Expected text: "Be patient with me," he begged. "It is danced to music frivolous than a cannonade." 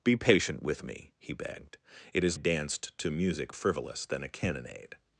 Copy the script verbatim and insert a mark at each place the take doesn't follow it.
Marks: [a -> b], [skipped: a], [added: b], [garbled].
"Be patient with me," he begged. "It is danced to music frivolous than a cannonade."